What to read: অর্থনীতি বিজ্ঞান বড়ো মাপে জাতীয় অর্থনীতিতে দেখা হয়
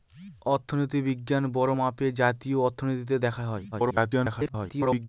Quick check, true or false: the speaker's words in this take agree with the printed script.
false